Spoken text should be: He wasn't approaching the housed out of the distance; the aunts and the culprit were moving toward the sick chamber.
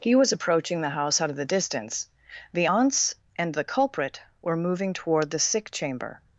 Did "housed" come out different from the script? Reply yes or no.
yes